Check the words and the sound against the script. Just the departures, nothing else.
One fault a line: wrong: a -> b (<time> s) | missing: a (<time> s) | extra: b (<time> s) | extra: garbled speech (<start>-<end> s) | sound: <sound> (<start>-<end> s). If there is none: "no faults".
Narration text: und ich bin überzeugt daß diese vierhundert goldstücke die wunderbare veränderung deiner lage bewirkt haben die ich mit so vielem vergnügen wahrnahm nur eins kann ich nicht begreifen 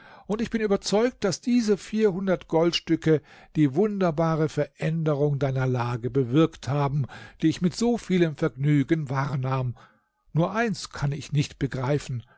no faults